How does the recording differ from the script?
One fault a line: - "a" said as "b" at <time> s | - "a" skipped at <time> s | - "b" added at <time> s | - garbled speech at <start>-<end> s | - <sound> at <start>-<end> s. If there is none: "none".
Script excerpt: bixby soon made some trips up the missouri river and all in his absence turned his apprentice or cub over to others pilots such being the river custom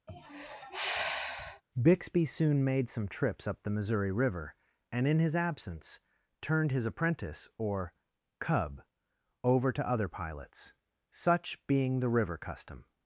- sigh at 0.1-1.6 s
- "all" skipped at 5.1 s
- "others" said as "other" at 9.9 s